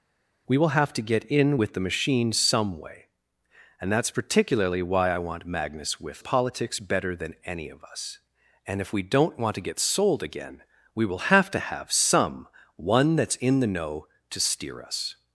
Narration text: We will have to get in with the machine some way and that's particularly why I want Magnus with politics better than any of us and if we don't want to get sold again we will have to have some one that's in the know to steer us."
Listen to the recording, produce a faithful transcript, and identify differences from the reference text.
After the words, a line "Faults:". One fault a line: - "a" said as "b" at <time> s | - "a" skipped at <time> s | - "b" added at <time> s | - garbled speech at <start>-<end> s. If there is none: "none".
We will have to get in with the machine some way and that's particularly why I want Magnus with politics better than any of us and if we don't want to get sold again we will have to have some one that's in the know to steer us."
Faults:
none